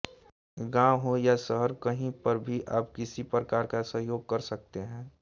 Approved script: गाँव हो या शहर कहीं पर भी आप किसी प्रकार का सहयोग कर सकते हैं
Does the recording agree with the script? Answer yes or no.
yes